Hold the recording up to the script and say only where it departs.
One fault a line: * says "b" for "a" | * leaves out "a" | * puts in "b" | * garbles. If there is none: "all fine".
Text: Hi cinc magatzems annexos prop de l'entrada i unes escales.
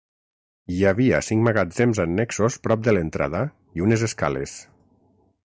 * puts in "havia"